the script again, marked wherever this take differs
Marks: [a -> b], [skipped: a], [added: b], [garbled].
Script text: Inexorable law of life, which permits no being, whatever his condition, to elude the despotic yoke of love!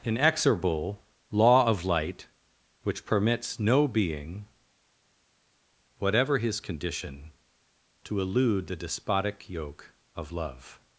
Inexorable law of [life, -> light] which permits no being, whatever his condition, to elude the despotic yoke of love!